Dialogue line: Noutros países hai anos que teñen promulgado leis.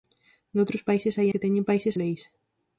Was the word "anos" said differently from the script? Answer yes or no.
yes